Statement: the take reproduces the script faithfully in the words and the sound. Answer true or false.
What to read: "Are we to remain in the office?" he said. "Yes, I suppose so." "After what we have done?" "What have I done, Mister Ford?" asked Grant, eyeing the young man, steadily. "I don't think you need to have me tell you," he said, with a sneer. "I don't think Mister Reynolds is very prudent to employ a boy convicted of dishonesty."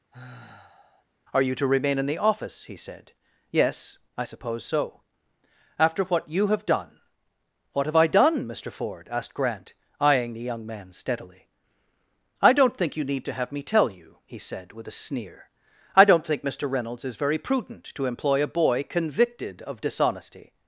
false